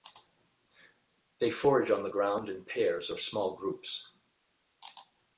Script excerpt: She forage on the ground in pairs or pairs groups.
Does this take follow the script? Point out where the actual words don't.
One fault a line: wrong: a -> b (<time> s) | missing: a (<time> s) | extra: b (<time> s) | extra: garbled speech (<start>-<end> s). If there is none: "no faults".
wrong: She -> They (1.4 s)
wrong: pairs -> small (3.2 s)